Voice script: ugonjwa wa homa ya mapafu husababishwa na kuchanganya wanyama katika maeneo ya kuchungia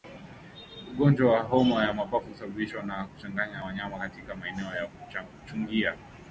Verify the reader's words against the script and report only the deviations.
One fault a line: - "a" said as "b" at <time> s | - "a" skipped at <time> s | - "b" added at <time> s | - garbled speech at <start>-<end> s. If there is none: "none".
none